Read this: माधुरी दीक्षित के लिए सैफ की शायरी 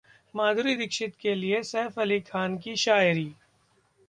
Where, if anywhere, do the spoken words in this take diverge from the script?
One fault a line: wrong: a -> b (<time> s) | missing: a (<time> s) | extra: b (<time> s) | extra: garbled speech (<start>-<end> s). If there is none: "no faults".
extra: अली खान (2.0 s)